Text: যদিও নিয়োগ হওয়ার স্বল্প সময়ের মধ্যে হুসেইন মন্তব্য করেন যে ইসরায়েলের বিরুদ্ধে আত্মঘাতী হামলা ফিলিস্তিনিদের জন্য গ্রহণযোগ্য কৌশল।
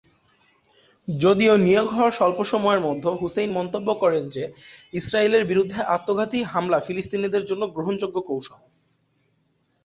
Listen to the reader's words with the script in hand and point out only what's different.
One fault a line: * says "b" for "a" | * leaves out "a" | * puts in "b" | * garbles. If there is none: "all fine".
all fine